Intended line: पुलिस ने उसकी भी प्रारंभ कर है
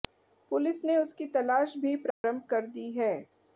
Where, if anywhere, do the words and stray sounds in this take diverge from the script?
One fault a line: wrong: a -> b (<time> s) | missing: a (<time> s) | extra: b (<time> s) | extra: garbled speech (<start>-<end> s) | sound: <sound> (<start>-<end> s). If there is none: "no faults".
extra: तलाश (1.3 s)
sound: dropout (2.1-2.2 s)
extra: दी (2.7 s)